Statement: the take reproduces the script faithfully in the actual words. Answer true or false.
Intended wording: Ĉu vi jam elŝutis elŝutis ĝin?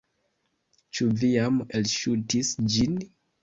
false